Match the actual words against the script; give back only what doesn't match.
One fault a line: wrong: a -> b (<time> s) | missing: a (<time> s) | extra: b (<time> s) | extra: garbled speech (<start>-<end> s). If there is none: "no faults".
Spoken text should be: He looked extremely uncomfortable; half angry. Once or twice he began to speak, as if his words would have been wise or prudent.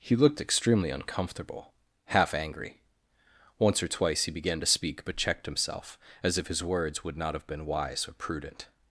extra: but checked himself (5.0 s)
extra: not (7.2 s)